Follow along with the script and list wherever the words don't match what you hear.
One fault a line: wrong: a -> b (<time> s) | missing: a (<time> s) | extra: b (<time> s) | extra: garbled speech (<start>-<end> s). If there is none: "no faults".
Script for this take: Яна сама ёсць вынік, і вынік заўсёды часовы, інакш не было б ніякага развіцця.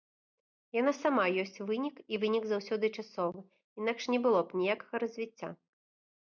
no faults